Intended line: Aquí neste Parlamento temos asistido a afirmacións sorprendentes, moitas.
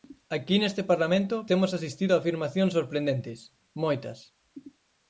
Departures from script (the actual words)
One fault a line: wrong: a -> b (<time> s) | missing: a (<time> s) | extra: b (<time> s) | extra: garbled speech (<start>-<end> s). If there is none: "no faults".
no faults